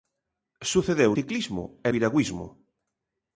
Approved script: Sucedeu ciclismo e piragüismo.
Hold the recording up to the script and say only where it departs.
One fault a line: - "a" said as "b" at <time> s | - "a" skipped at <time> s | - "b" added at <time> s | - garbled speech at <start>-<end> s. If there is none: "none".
none